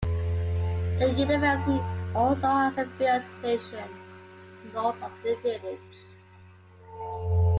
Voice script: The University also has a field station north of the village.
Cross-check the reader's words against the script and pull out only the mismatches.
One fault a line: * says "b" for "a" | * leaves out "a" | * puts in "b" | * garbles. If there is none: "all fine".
all fine